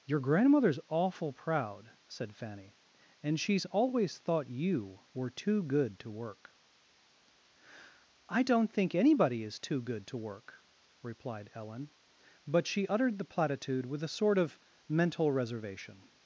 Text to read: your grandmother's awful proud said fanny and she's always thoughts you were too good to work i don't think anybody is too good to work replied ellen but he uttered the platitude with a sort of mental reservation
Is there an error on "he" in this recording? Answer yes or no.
yes